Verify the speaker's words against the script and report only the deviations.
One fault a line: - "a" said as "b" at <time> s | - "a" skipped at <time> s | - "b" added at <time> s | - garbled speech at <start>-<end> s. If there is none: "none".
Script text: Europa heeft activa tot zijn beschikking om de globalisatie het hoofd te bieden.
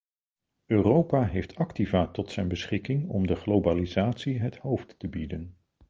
none